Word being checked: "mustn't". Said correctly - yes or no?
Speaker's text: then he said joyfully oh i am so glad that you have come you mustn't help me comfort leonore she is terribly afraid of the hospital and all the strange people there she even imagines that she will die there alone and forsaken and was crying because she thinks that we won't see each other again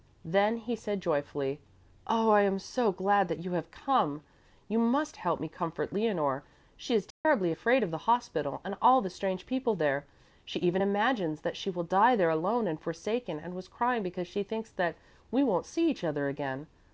no